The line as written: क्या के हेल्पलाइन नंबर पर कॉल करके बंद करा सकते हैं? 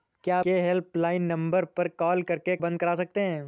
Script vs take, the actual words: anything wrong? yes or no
no